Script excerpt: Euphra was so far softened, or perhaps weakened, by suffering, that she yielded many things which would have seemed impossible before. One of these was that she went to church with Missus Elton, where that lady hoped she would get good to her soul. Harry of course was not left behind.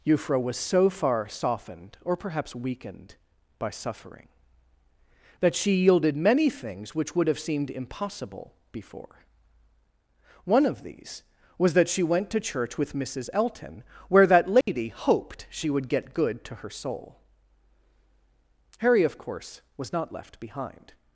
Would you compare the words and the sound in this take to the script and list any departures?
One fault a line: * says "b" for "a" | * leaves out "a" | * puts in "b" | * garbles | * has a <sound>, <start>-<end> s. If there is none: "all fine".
* has a dropout, 14.6-14.7 s